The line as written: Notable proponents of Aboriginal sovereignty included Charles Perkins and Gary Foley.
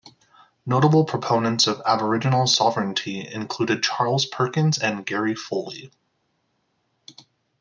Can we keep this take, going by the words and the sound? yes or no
yes